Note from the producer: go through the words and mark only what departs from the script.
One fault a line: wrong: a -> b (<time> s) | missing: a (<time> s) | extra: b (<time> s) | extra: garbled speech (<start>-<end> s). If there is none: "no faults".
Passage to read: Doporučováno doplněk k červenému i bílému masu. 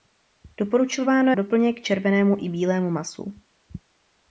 no faults